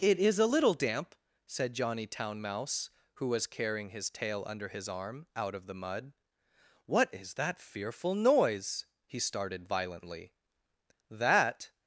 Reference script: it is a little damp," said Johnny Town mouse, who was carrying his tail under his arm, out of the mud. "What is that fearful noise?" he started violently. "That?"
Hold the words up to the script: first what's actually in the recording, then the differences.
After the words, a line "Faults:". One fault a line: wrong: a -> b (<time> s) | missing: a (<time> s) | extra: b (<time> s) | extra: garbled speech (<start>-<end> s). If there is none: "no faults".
it is a little damp," said Johnny Town mouse, who was carrying his tail under his arm, out of the mud. "What is that fearful noise?" he started violently. "That?"
Faults:
no faults